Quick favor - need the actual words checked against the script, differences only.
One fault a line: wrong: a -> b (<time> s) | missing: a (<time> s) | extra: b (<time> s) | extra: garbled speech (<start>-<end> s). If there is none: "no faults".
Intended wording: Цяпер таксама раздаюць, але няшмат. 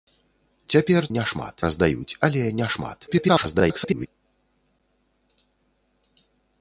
wrong: таксама -> няшмат (1.2 s)
extra: garbled speech (3.1-4.1 s)